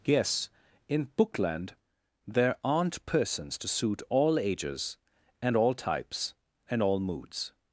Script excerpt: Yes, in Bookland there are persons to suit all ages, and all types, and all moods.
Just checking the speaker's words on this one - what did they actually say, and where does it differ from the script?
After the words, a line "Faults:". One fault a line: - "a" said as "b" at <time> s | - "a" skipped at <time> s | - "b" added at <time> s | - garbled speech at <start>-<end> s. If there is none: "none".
Yes, in Bookland there aren't persons to suit all ages, and all types, and all moods.
Faults:
- "are" said as "aren't" at 2.6 s